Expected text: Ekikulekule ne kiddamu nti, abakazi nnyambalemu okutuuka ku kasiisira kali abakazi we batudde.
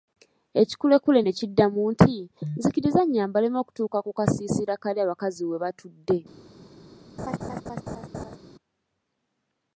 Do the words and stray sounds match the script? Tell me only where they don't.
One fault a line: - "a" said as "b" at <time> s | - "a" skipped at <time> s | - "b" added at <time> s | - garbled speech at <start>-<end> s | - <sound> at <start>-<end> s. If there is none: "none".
- "abakazi" said as "nzikiriza" at 2.6 s
- laugh at 7.2-8.4 s